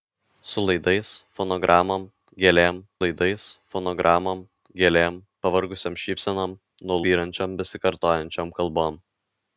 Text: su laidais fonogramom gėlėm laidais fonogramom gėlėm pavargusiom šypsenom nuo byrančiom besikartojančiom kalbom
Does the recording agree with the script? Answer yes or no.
yes